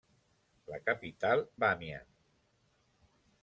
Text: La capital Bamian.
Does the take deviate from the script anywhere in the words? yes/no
no